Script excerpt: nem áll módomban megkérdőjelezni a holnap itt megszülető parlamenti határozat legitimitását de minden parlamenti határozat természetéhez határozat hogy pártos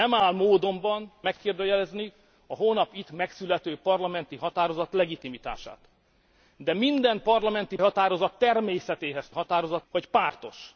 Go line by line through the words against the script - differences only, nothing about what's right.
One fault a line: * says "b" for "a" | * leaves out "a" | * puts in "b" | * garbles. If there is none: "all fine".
all fine